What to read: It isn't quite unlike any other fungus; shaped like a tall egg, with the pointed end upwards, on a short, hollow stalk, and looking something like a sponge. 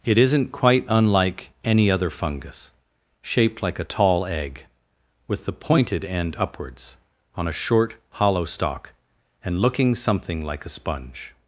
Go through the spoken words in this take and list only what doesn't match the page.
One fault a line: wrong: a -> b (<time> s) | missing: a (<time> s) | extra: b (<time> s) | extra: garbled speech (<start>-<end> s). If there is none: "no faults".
no faults